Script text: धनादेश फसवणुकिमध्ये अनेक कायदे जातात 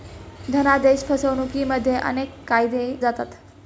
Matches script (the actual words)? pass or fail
pass